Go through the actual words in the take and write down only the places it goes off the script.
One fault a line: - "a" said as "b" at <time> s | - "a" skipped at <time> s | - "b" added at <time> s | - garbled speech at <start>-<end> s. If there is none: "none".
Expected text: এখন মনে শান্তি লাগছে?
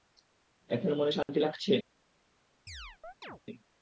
none